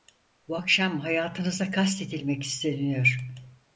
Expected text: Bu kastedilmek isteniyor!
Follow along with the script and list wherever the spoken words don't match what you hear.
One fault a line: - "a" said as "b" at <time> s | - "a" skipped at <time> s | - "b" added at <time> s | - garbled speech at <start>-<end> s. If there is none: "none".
- "akşam hayatınıza" added at 0.5 s